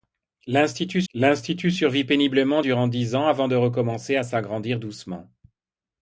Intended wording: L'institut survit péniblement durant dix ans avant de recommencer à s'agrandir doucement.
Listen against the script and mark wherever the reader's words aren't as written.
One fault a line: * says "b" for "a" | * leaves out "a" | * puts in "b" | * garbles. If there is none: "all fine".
* puts in "l'institut"